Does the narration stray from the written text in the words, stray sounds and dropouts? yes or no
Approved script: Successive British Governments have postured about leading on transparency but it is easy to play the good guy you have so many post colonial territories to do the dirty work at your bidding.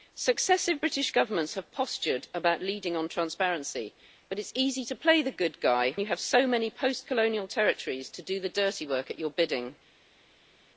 no